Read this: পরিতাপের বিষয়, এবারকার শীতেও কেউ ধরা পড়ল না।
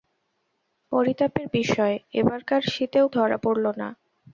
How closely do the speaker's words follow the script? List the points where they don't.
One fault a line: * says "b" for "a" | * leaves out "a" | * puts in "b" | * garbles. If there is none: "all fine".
* leaves out "কেউ"